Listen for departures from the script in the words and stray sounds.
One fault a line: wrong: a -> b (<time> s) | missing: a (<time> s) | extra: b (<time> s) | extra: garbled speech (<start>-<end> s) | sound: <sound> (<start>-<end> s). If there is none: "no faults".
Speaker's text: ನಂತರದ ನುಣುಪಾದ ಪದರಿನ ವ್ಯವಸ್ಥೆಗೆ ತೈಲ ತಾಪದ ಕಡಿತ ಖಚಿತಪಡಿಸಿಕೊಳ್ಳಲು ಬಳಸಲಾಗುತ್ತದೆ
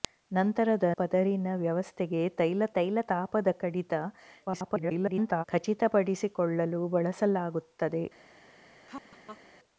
missing: ನುಣುಪಾದ (0.9 s)
extra: ತೈಲ (2.8 s)
extra: garbled speech (4.5-5.4 s)
sound: laugh (8.9-9.4 s)